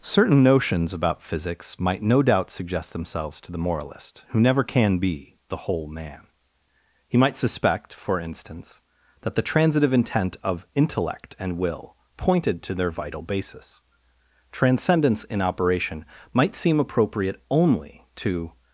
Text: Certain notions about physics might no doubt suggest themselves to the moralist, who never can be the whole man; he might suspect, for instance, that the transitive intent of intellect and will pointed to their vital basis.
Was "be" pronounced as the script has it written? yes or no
yes